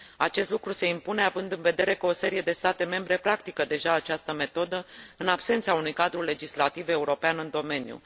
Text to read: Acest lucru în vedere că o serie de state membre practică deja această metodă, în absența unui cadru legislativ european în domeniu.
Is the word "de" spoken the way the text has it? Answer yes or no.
yes